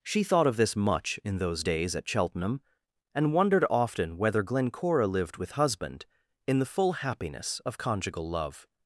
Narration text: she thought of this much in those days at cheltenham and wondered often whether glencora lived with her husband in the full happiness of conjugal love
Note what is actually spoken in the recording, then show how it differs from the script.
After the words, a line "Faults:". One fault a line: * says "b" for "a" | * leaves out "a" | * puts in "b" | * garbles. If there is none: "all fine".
she thought of this much in those days at cheltenham and wondered often whether glencora lived with husband in the full happiness of conjugal love
Faults:
* leaves out "her"